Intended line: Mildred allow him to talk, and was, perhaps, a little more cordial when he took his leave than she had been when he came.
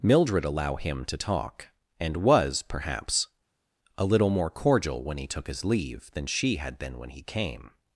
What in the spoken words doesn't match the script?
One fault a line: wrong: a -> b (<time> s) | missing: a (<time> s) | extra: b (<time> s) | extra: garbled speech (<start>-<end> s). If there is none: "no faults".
no faults